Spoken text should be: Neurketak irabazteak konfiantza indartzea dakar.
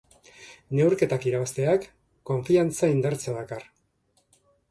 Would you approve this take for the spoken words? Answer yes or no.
yes